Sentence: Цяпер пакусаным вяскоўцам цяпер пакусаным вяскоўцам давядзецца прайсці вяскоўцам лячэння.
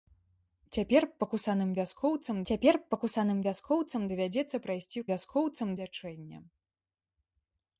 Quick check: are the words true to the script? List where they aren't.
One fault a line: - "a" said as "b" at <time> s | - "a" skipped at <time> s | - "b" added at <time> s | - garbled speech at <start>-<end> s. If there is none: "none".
none